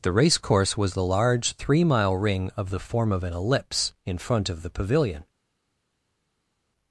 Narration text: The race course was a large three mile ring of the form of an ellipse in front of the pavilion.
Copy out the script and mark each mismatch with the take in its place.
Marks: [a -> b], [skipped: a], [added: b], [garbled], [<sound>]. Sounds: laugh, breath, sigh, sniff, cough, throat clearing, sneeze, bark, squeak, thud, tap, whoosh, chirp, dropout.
The race course was [a -> the] large three mile ring of the form of an ellipse in front of the pavilion.